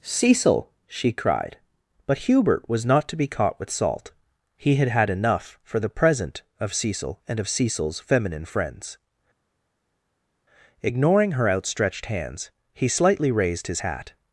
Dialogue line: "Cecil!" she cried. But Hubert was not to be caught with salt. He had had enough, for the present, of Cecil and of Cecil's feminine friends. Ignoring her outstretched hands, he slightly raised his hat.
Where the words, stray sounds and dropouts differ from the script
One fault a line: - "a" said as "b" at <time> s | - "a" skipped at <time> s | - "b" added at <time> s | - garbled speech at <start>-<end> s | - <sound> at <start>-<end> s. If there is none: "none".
none